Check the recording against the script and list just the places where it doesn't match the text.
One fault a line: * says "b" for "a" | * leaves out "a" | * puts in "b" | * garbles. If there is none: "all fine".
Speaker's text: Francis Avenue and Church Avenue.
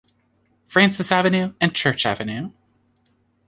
all fine